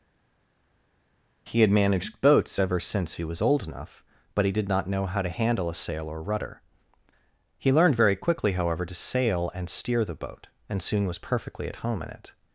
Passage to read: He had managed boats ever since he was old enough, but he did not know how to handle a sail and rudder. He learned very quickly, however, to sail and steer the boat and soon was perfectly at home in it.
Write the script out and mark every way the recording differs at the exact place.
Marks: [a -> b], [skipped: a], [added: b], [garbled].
He had managed boats ever since he was old enough, but he did not know how to handle a sail [and -> or] rudder. He learned very quickly, however, to sail and steer the boat and soon was perfectly at home in it.